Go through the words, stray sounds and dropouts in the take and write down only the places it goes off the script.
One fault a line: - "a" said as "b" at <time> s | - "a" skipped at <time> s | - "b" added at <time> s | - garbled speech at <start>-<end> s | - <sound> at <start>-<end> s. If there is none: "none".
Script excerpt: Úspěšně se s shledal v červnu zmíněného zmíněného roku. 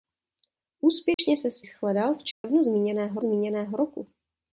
- dropout at 1.1-1.2 s
- dropout at 2.3-2.4 s